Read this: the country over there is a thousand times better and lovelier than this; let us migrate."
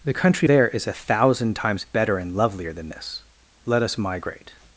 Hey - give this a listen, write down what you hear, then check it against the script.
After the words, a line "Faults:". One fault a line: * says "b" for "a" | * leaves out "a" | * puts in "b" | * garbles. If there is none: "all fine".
the country there is a thousand times better and lovelier than this; let us migrate."
Faults:
* leaves out "over"